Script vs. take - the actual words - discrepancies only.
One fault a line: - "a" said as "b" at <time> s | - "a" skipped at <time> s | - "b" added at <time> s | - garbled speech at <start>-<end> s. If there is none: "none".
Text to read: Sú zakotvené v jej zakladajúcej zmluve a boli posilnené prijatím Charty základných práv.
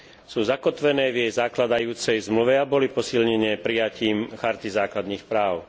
none